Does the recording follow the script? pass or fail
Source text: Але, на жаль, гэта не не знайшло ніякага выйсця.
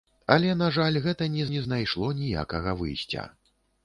pass